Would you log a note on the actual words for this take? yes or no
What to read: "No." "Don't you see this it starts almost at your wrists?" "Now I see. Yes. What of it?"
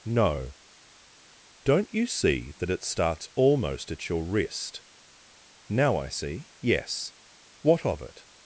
yes